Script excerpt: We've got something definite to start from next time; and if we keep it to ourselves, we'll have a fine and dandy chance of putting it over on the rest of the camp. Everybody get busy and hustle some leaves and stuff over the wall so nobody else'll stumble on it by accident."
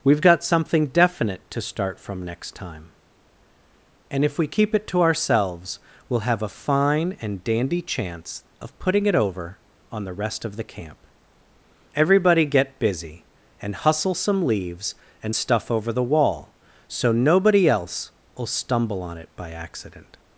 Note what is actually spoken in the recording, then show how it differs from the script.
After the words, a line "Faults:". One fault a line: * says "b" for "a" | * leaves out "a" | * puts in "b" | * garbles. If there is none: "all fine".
We've got something definite to start from next time; and if we keep it to ourselves, we'll have a fine and dandy chance of putting it over on the rest of the camp. Everybody get busy and hustle some leaves and stuff over the wall so nobody else'll stumble on it by accident."
Faults:
all fine